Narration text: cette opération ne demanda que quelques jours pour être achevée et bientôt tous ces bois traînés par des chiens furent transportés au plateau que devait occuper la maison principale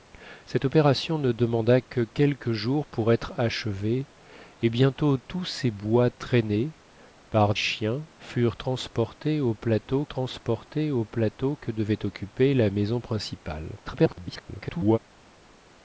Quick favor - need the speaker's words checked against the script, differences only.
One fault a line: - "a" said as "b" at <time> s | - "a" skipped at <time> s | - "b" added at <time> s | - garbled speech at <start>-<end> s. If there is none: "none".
- "des" skipped at 7.5 s
- "transportés au plateau" added at 10.1 s
- garbled speech at 13.9-15.0 s